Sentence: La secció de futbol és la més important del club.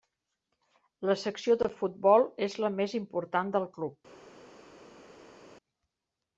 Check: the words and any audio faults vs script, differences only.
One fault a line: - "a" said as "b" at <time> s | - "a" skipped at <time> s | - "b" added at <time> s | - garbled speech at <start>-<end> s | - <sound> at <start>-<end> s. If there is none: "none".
none